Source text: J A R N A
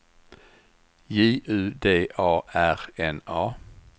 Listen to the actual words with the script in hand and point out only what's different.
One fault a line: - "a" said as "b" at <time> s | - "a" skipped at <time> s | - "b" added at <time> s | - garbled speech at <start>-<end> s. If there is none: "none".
- "U D" added at 1.4 s